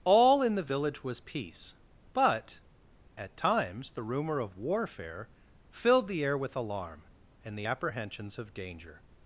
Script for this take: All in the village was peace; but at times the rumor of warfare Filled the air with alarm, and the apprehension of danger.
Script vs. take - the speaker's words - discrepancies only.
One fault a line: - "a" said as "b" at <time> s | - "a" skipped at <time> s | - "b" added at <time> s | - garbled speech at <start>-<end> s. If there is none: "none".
- "apprehension" said as "apprehensions" at 7.6 s